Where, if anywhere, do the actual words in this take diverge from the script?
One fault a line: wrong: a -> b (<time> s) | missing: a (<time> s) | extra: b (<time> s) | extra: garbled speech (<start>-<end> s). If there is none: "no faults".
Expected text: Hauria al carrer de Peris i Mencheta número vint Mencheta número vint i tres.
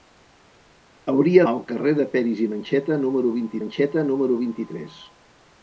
no faults